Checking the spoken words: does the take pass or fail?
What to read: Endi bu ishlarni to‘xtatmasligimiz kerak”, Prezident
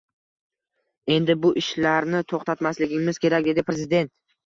fail